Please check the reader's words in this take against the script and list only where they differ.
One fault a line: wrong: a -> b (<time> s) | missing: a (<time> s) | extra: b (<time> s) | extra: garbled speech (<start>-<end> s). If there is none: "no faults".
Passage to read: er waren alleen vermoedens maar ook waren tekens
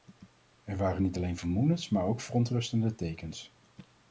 extra: niet (1.0 s)
wrong: waren -> verontrustende (2.2 s)